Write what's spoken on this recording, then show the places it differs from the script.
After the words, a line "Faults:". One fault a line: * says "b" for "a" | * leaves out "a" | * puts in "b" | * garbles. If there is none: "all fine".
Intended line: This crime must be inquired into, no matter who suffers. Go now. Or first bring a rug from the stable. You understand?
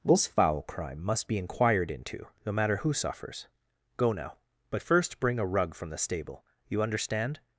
This foul crime must be inquired into, no matter who suffers. Go now. But first bring a rug from the stable. You understand?
Faults:
* puts in "foul"
* says "But" for "Or"